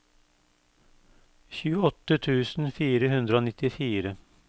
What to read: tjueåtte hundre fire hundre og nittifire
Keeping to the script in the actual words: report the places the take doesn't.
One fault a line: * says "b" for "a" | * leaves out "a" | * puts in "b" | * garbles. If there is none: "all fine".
* says "tusen" for "hundre"